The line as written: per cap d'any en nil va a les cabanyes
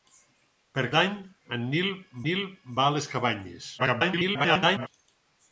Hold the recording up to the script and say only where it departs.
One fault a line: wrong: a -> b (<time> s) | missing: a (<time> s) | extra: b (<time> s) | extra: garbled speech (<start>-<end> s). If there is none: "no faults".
missing: cap (0.8 s)
extra: nil (2.3 s)
extra: garbled speech (3.8-4.9 s)